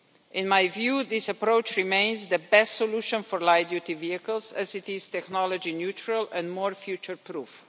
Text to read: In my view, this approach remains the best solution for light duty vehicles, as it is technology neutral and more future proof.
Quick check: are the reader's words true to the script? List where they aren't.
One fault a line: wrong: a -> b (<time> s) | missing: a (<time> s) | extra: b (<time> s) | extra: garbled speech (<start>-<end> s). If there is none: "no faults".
no faults